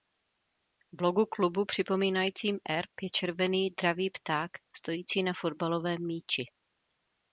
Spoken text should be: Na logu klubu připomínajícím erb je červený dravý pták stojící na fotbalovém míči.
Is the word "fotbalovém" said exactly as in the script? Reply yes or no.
yes